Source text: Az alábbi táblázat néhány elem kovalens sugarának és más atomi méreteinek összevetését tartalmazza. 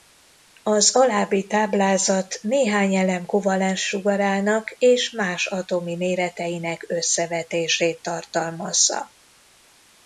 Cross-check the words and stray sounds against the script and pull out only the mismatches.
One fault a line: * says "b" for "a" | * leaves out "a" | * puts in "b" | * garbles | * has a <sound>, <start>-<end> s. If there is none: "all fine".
all fine